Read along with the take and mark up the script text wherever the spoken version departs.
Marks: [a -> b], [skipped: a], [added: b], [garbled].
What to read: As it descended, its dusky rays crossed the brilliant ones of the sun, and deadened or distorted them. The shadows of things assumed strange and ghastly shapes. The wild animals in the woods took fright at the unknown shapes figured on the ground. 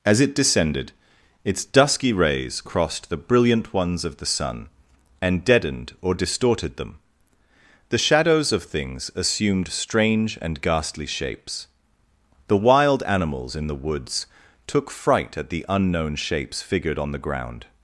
As it descended, its dusky rays crossed the brilliant ones of the sun, and deadened or distorted them. The shadows of things assumed strange and ghastly shapes. The wild animals in the woods took fright at the unknown shapes figured on the ground.